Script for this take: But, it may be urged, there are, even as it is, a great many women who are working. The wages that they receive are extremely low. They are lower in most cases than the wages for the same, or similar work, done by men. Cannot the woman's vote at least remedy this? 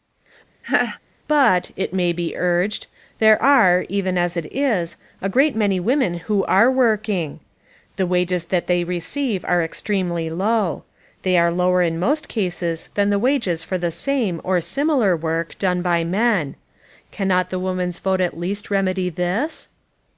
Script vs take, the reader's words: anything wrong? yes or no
no